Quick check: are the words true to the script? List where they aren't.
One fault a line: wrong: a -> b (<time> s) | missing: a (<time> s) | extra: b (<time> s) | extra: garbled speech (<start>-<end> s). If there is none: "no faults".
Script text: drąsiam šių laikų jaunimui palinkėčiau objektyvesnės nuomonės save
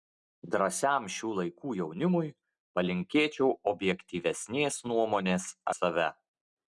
no faults